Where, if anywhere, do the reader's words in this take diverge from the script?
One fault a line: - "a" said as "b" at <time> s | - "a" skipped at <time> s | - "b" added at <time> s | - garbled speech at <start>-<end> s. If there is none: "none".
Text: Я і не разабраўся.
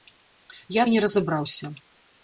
none